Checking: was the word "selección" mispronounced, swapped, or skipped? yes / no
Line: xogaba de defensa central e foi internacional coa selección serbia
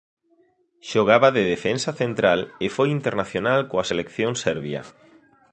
no